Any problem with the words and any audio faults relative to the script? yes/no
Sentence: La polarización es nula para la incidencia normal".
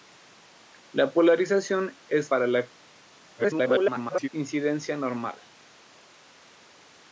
yes